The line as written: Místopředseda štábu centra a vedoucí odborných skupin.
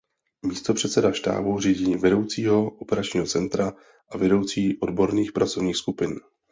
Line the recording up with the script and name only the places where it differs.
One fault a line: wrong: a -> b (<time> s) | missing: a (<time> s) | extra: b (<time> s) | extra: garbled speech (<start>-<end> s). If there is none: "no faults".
extra: řídí vedoucího operačního (1.6 s)
extra: pracovních (5.3 s)